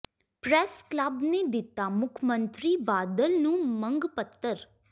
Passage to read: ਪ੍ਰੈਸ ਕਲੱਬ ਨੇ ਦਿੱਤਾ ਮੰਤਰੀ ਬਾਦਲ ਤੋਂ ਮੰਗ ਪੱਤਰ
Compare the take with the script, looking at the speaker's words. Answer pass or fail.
fail